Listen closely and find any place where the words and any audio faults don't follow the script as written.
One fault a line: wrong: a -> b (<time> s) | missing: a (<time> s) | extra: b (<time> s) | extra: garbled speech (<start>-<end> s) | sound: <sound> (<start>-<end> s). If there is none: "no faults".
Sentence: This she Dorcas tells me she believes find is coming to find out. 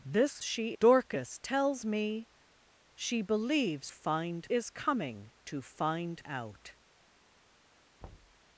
sound: thud (8.0-8.4 s)